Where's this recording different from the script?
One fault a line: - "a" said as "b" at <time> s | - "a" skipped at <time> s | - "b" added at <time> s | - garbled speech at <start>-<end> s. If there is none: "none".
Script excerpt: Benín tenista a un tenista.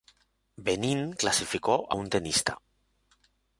- "tenista" said as "clasificó" at 1.1 s